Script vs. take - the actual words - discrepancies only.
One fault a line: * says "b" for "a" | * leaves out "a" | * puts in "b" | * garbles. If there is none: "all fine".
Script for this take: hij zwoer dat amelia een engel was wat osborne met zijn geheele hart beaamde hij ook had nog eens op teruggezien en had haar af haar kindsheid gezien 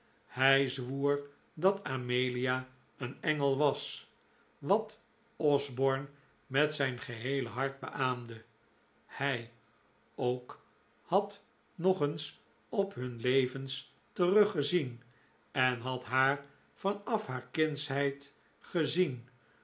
* puts in "hun levens"
* puts in "van"